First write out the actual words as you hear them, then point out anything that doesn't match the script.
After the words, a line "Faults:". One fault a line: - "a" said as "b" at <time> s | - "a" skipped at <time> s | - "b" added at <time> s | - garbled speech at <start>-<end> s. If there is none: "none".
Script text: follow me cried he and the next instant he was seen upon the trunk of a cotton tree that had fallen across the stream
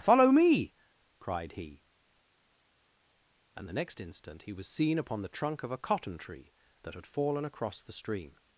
follow me cried he and the next instant he was seen upon the trunk of a cotton tree that had fallen across the stream
Faults:
none